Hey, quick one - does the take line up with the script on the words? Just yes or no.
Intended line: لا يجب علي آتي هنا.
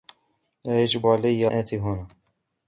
yes